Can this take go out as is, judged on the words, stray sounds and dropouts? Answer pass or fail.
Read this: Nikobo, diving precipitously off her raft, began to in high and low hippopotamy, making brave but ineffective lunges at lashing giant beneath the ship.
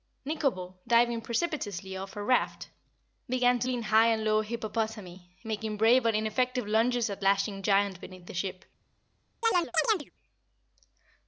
fail